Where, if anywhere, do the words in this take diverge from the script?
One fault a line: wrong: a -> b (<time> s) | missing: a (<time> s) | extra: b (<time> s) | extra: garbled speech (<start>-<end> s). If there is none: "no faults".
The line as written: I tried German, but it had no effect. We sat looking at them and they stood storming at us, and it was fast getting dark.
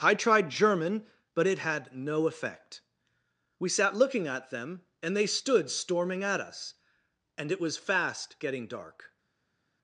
no faults